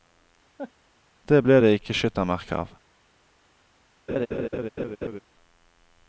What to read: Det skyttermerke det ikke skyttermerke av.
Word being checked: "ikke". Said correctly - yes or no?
yes